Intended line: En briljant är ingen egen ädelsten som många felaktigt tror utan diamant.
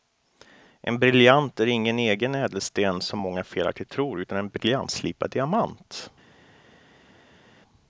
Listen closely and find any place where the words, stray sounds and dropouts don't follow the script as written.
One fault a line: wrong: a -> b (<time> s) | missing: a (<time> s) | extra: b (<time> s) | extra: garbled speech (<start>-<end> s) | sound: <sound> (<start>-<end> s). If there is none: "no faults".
extra: en briljantslipad (4.4 s)